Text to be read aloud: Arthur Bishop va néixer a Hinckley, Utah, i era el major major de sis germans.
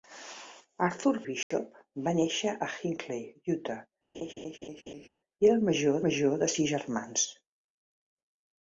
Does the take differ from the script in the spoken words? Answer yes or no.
no